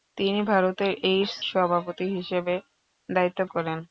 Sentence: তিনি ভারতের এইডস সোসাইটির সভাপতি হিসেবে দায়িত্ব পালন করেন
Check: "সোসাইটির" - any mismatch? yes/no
yes